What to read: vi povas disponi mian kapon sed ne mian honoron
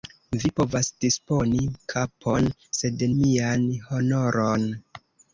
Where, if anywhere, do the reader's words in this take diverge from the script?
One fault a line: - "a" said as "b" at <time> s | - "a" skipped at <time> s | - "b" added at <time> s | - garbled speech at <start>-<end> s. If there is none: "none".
- "mian" skipped at 1.6 s
- "ne" skipped at 3.1 s